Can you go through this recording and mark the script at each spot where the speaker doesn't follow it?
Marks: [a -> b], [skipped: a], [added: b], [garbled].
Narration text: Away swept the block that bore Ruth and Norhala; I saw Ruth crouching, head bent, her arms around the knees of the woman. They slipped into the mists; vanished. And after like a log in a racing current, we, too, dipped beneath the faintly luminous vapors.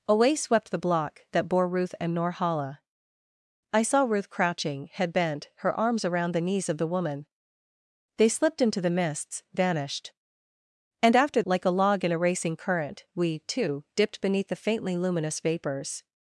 Away swept the block that bore Ruth and Norhala; I saw Ruth crouching, head bent, her arms around the knees of the woman. They slipped into the mists; vanished. And after like a log in a racing current, we, too, dipped beneath the faintly luminous vapors.